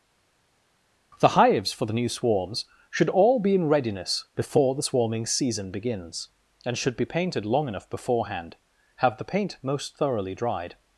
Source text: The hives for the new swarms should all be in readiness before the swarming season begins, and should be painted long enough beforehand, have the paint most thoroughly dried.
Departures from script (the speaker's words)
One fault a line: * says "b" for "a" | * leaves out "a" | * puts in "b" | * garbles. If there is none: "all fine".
all fine